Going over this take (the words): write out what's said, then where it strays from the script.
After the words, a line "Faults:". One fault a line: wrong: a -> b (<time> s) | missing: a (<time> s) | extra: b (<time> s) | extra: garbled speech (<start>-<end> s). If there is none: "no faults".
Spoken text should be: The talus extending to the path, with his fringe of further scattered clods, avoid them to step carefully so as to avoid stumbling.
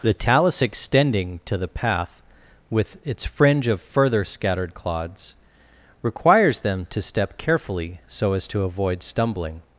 The talus extending to the path, with its fringe of further scattered clods, requires them to step carefully so as to avoid stumbling.
Faults:
wrong: his -> its (3.0 s)
wrong: avoid -> requires (6.0 s)